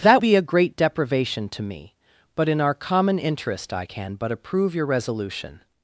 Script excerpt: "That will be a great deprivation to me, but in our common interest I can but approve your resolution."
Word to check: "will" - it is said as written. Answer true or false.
false